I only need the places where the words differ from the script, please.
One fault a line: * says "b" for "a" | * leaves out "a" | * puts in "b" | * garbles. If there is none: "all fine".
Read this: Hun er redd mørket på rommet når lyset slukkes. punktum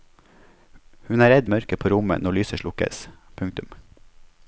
all fine